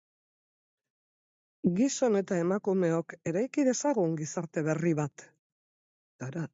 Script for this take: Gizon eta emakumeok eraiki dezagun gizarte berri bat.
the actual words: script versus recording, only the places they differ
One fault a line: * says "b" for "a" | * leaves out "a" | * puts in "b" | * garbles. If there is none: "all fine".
all fine